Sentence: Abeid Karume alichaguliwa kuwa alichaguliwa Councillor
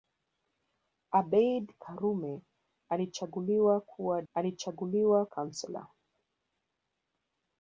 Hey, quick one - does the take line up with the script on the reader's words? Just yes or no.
yes